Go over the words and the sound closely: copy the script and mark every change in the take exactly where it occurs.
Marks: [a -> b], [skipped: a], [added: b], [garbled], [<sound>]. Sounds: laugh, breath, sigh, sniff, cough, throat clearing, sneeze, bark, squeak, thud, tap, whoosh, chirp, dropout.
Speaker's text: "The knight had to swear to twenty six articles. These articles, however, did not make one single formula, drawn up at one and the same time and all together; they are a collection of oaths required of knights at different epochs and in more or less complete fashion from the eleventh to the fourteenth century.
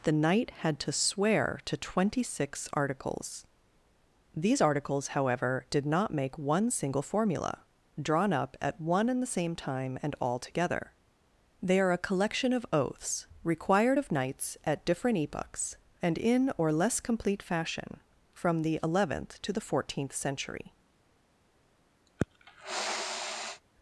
"The knight had to swear to twenty six articles. These articles, however, did not make one single formula, drawn up at one and the same time and all together; they are a collection of oaths required of knights at different epochs and in [skipped: more] or less complete fashion from the eleventh to the fourteenth century. [sniff]